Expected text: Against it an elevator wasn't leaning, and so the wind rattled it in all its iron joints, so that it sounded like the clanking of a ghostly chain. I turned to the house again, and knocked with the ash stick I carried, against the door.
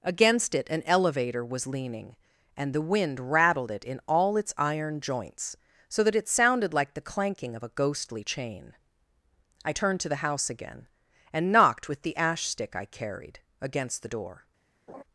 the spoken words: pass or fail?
fail